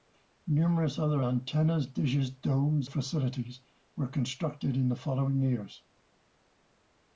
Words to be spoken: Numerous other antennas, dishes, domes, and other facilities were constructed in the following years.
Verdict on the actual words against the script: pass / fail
fail